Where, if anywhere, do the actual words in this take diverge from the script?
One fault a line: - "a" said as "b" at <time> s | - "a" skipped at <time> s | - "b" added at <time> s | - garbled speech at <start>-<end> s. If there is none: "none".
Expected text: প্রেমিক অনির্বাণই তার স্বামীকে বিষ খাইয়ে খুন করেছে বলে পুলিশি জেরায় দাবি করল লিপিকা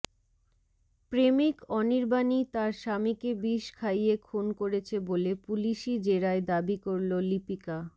none